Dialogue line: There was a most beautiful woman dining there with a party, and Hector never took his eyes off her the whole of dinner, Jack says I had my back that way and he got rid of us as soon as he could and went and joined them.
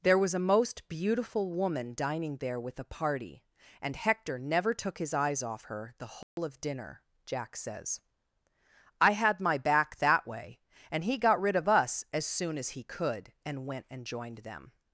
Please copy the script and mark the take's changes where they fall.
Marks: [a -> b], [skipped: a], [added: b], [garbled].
There was a most beautiful woman dining there with a party, and Hector never took his eyes off her the whole of dinner, Jack says I had my back that way and he got rid of us as soon as he could and went and joined them.